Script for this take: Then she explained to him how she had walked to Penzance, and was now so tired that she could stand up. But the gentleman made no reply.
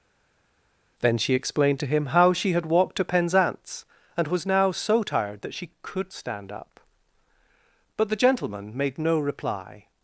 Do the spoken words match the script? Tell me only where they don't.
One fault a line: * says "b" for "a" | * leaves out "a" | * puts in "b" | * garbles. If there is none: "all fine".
all fine